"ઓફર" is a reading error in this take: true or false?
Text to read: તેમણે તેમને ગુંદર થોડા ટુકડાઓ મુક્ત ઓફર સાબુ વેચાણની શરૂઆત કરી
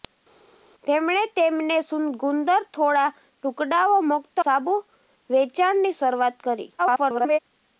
true